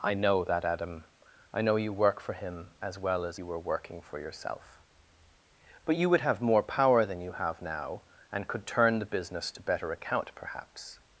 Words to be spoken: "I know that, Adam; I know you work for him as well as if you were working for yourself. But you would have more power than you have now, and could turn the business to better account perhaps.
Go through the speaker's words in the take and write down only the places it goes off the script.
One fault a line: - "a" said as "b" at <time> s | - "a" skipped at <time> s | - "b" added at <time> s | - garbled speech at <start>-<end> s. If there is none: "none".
- "if" skipped at 3.4 s